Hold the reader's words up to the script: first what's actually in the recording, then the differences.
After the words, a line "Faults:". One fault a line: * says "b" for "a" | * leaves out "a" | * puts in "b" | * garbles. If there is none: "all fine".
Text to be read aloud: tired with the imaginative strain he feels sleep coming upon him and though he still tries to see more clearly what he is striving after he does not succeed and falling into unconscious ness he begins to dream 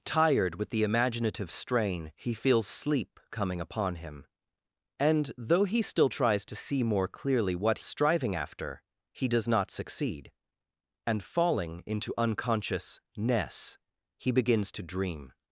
tired with the imaginative strain he feels sleep coming upon him and though he still tries to see more clearly what striving after he does not succeed and falling into unconscious ness he begins to dream
Faults:
* leaves out "he is"